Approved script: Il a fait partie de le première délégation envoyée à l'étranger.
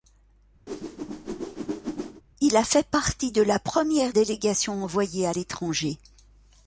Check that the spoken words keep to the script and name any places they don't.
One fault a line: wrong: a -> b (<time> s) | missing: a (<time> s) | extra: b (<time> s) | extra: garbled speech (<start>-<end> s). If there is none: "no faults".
wrong: le -> la (3.4 s)